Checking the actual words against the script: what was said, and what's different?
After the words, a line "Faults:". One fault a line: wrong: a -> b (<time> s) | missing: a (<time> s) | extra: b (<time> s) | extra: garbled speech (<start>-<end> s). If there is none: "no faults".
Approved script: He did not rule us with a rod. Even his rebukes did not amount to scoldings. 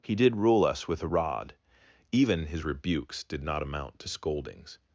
He did rule us with a rod. Even his rebukes did not amount to scoldings.
Faults:
missing: not (0.3 s)